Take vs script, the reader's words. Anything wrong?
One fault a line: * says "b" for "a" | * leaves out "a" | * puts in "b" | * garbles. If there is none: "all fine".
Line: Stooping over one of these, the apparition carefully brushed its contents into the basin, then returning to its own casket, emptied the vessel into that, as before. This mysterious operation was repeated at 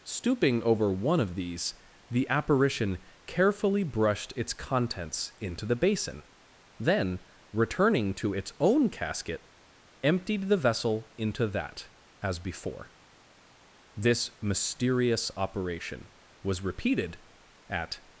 all fine